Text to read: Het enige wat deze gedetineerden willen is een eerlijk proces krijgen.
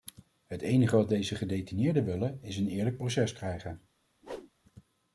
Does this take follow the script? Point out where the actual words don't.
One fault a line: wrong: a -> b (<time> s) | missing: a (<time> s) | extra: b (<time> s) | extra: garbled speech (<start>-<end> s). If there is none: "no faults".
no faults